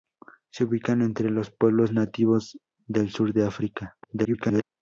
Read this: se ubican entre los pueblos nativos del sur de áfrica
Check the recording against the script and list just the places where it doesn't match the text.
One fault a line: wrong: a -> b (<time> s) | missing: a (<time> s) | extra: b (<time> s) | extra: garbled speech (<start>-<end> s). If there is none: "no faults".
extra: garbled speech (4.0-4.6 s)